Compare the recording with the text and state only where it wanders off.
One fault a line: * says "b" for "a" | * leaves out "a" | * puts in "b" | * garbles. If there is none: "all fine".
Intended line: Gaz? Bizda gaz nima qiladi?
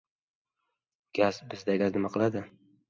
all fine